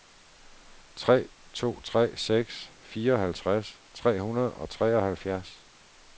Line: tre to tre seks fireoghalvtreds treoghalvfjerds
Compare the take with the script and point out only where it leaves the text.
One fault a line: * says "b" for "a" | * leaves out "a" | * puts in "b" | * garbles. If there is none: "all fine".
* puts in "tre hundrede og"